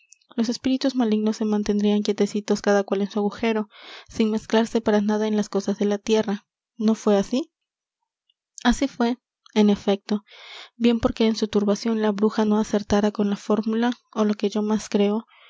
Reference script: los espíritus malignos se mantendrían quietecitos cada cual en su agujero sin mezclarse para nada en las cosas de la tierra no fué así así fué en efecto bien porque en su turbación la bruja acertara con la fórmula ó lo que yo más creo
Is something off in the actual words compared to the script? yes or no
yes